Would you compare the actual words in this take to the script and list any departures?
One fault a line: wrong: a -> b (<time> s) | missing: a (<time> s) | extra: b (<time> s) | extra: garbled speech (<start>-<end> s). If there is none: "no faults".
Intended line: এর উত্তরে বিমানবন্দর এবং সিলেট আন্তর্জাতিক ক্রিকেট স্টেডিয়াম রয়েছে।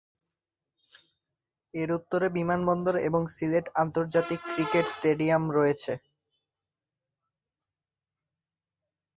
no faults